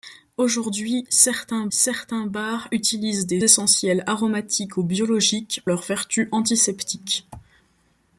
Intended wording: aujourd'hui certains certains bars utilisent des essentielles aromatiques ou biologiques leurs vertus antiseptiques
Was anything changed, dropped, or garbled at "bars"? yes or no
no